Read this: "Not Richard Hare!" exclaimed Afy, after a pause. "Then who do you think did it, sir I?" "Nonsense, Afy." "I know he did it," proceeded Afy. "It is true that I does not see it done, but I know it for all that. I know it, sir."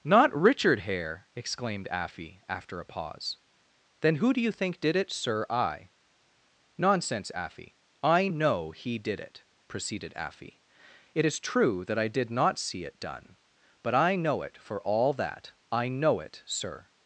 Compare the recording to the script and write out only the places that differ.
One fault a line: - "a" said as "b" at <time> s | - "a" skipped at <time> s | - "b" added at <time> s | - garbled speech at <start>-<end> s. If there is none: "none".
- "does" said as "did" at 12.1 s